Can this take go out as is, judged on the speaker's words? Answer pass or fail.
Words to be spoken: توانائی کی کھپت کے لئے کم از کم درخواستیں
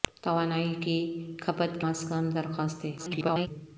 fail